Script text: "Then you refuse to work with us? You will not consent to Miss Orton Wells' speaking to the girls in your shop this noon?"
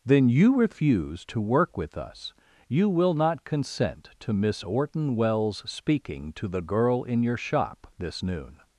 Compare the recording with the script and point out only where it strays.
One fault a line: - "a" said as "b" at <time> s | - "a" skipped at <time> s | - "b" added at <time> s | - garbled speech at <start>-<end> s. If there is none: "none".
- "girls" said as "girl" at 6.6 s